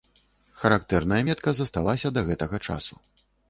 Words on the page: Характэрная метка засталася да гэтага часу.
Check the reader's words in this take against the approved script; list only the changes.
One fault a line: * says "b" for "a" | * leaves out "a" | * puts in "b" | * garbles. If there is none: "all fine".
all fine